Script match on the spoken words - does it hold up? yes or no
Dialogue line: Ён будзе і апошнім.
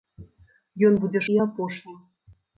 yes